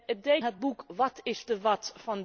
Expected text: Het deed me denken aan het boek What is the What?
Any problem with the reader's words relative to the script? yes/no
yes